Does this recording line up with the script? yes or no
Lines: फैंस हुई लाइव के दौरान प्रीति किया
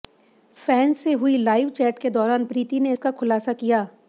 no